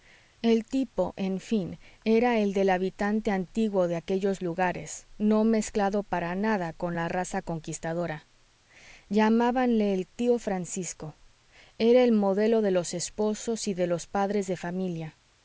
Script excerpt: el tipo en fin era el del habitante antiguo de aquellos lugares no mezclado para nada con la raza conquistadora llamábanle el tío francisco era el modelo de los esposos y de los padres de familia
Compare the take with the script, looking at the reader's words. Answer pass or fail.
pass